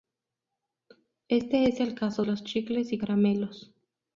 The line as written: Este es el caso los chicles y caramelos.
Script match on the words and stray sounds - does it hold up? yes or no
yes